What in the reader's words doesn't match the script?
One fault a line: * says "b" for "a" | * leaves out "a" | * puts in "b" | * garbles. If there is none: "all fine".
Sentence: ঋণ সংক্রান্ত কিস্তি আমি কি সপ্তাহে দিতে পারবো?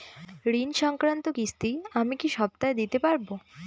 all fine